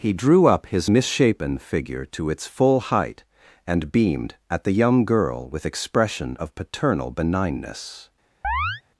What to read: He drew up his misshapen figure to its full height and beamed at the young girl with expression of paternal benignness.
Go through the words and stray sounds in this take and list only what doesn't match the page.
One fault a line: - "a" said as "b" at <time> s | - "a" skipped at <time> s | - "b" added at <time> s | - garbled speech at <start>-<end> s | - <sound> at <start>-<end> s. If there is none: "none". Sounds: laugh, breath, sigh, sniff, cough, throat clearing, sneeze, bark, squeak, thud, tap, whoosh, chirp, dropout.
- chirp at 8.4-8.8 s